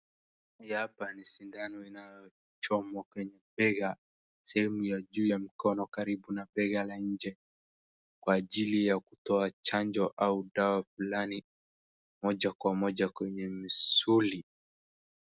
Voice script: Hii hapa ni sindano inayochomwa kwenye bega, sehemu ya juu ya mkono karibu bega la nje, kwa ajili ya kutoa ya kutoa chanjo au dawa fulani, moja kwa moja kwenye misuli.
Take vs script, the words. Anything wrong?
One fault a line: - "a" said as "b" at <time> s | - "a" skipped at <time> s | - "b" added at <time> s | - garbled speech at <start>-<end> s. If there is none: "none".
- "na" added at 6.3 s
- "ya kutoa" skipped at 9.5 s